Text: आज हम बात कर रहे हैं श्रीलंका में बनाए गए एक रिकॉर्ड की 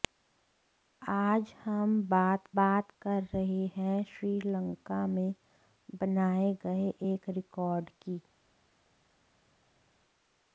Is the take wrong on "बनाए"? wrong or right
right